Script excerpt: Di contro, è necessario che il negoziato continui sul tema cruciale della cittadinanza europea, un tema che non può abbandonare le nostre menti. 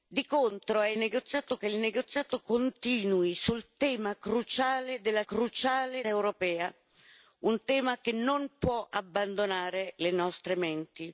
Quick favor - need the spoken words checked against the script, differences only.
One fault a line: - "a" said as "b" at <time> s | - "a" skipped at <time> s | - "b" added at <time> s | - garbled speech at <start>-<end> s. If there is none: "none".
- "necessario" said as "negoziato" at 0.9 s
- "cittadinanza" said as "cruciale" at 5.2 s